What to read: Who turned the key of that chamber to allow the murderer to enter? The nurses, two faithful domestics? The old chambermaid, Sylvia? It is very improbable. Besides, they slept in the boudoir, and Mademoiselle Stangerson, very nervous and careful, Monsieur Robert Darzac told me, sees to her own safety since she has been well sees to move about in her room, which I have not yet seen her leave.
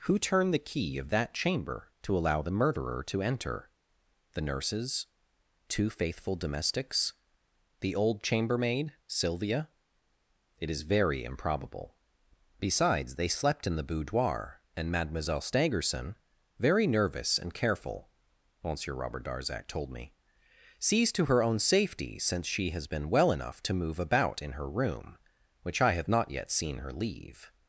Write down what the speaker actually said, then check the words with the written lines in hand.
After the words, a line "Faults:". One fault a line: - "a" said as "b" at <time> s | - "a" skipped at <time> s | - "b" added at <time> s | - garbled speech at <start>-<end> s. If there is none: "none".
Who turned the key of that chamber to allow the murderer to enter? The nurses, two faithful domestics? The old chambermaid, Sylvia? It is very improbable. Besides, they slept in the boudoir, and Mademoiselle Stangerson, very nervous and careful, Monsieur Robert Darzac told me, sees to her own safety since she has been well enough to move about in her room, which I have not yet seen her leave.
Faults:
- "sees" said as "enough" at 23.3 s